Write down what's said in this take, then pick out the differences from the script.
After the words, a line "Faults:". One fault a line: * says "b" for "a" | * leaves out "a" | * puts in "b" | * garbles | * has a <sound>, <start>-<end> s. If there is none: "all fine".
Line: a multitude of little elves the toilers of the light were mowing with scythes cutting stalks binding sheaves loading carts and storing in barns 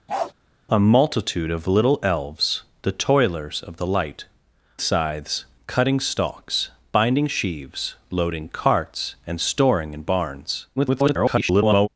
a multitude of little elves the toilers of the light scythes cutting stalks binding sheaves loading carts and storing in barns [garbled]
Faults:
* has a bark, 0.1-0.3 s
* leaves out "were mowing with"
* garbles